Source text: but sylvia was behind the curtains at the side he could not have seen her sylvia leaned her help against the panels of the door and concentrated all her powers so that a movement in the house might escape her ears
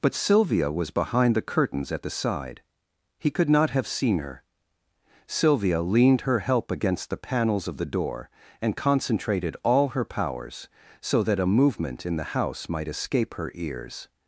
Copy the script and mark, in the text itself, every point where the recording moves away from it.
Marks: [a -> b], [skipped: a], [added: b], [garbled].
but sylvia was behind the curtains at the side he could not have seen her sylvia leaned her help against the panels of the door and concentrated all her powers so that a movement in the house might escape her ears